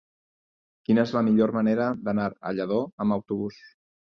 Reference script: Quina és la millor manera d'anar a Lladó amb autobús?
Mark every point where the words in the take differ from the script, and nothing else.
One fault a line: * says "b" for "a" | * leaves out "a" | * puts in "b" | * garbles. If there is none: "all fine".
all fine